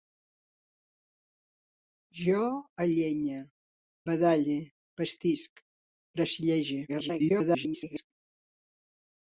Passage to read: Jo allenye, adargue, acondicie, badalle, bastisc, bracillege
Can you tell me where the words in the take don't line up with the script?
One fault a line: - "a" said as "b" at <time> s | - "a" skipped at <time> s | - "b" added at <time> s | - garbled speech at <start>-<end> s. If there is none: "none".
- "adargue acondicie" skipped at 3.4 s
- garbled speech at 6.9-8.1 s